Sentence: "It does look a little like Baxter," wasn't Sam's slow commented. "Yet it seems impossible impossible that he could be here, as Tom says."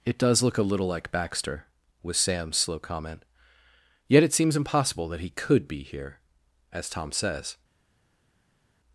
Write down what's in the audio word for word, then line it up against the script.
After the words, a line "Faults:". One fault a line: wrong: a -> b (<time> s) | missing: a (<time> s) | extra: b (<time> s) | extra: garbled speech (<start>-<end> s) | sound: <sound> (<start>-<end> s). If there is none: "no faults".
"It does look a little like Baxter," was Sam's slow comment. "Yet it seems impossible that he could be here, as Tom says."
Faults:
wrong: wasn't -> was (2.0 s)
wrong: commented -> comment (2.8 s)
missing: impossible (5.1 s)